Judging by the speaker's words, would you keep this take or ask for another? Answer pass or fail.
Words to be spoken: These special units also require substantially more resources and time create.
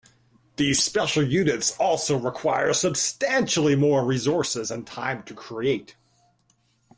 fail